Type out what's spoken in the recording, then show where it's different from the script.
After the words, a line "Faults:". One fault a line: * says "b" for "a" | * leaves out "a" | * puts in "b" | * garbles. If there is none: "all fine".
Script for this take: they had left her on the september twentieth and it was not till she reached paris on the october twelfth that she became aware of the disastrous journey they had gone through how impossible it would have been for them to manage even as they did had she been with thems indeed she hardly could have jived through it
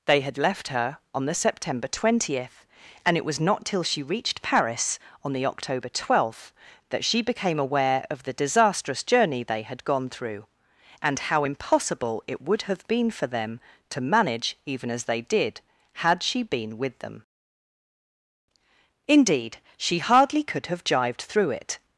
they had left her on the september twentieth and it was not till she reached paris on the october twelfth that she became aware of the disastrous journey they had gone through and how impossible it would have been for them to manage even as they did had she been with them indeed she hardly could have jived through it
Faults:
* puts in "and"
* says "them" for "thems"